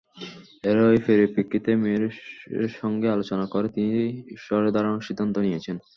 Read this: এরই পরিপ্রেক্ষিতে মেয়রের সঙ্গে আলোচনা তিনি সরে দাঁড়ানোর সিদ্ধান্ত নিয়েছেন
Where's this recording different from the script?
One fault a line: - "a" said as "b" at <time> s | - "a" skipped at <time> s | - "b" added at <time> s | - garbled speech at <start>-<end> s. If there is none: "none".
- "করে" added at 3.5 s